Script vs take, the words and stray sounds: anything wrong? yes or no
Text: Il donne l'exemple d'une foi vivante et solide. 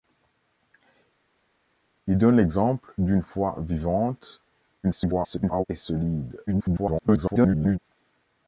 yes